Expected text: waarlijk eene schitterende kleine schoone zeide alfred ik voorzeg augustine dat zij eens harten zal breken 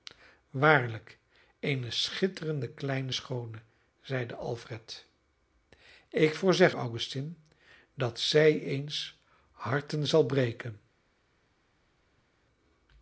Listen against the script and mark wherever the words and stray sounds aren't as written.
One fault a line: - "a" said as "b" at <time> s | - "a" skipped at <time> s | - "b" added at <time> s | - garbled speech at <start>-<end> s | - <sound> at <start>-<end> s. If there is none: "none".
none